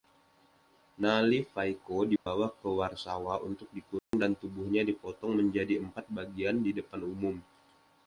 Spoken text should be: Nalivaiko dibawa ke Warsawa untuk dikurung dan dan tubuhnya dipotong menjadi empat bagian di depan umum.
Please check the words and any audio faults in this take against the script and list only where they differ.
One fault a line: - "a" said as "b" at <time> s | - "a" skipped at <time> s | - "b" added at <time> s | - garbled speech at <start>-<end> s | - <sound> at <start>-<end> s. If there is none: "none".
- dropout at 2.2-2.3 s
- dropout at 4.0-4.1 s
- "dan" skipped at 4.3 s